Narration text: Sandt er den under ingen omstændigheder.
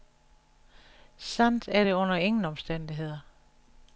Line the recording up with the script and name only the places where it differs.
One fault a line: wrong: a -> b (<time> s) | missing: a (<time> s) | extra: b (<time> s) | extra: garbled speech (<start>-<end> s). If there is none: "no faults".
wrong: den -> det (1.8 s)